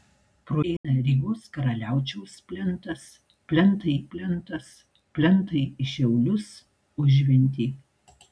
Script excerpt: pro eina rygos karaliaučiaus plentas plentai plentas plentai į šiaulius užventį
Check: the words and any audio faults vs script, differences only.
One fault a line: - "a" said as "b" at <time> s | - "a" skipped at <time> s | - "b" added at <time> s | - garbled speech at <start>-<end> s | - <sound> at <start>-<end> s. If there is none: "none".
- dropout at 0.8-0.8 s